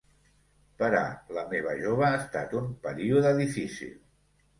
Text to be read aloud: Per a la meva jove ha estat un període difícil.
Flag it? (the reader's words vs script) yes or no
no